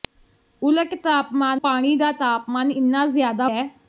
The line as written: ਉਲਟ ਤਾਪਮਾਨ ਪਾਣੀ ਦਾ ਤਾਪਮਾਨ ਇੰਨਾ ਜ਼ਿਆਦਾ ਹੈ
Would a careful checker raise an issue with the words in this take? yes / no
no